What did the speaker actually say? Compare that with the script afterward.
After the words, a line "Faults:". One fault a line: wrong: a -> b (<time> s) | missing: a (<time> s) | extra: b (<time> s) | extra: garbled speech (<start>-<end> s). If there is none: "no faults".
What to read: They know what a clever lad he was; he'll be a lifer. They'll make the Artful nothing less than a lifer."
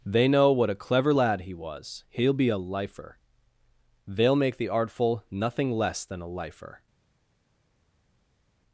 They know what a clever lad he was; he'll be a lifer. They'll make the Artful nothing less than a lifer."
Faults:
no faults